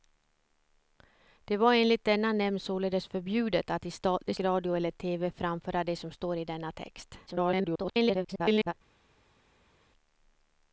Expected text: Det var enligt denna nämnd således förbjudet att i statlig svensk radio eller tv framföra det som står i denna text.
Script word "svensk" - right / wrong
wrong